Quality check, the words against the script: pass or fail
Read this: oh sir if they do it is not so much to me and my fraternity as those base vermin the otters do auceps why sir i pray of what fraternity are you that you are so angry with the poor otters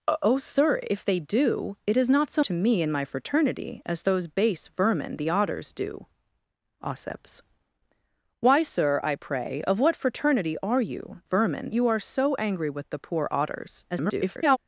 fail